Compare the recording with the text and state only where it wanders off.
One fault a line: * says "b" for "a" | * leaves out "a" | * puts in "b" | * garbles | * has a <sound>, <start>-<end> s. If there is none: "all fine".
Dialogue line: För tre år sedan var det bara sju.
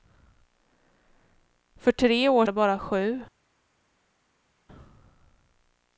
* leaves out "sedan var"